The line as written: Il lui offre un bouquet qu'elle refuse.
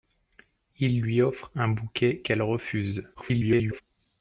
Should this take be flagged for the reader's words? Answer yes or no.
yes